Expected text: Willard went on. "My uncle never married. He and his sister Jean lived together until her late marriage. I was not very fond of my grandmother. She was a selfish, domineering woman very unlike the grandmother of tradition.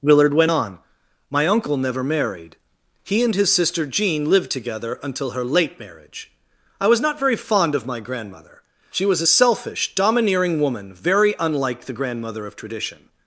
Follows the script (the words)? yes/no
yes